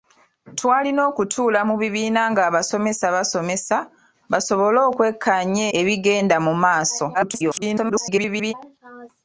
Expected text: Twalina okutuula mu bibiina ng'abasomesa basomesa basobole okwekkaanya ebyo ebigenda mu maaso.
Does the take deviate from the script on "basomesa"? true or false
false